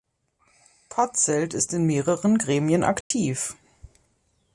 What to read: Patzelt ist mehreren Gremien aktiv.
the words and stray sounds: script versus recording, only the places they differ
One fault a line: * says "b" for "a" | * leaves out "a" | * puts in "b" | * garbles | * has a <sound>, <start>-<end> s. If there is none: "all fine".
* puts in "in"
* has a dropout, 3.0-3.1 s